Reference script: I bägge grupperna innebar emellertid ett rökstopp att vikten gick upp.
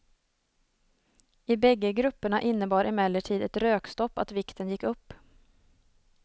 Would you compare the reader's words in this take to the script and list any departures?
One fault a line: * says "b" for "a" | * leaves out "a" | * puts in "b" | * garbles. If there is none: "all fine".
all fine